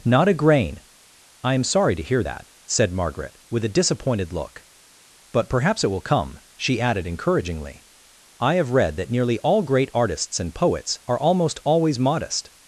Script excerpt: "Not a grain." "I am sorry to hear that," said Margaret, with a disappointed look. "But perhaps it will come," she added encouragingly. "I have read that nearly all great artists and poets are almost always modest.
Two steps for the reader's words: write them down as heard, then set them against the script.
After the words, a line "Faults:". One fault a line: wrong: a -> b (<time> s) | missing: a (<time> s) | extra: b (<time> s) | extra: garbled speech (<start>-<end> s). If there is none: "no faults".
"Not a grain." "I am sorry to hear that," said Margaret, with a disappointed look. "But perhaps it will come," she added encouragingly. "I have read that nearly all great artists and poets are almost always modest.
Faults:
no faults